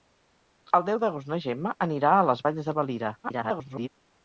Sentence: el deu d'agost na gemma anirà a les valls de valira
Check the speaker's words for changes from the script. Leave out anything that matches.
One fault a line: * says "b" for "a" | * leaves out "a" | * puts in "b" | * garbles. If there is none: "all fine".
* garbles